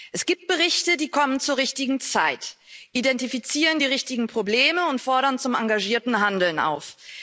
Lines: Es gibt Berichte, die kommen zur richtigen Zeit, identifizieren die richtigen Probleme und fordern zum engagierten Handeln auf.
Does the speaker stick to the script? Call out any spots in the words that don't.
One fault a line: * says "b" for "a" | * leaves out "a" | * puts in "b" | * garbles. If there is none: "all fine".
all fine